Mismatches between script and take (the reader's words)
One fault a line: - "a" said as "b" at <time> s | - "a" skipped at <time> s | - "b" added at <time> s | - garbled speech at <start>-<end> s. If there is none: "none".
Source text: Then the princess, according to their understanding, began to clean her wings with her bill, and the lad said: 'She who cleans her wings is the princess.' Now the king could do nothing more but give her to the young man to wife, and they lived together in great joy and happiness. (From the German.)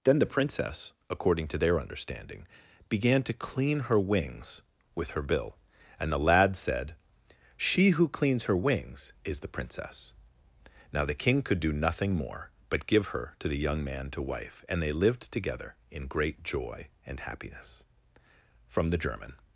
none